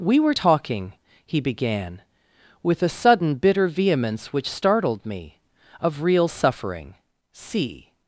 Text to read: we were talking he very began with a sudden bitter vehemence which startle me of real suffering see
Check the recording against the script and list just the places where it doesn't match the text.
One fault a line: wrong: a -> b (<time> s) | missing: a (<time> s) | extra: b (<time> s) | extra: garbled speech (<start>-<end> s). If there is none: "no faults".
missing: very (1.4 s)
wrong: startle -> startled (4.5 s)